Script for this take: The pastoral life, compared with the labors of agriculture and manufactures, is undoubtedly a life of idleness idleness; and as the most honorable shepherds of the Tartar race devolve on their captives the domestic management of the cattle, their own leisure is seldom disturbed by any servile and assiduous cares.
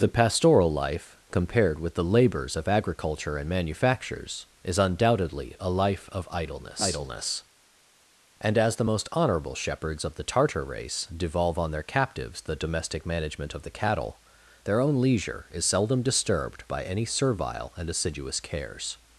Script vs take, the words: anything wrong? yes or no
no